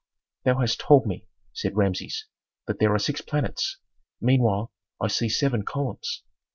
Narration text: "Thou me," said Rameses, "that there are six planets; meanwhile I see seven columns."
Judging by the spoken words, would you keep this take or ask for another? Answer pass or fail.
fail